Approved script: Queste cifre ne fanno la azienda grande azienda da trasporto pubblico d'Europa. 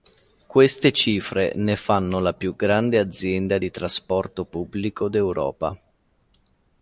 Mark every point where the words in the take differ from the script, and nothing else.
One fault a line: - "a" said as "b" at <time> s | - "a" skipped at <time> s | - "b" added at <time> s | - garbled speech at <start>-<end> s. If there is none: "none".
- "azienda" said as "più" at 2.3 s
- "da" said as "di" at 3.6 s